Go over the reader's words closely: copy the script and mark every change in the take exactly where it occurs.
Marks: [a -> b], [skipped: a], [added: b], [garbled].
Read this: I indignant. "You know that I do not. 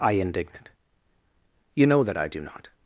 I indignant. "You know that I do not.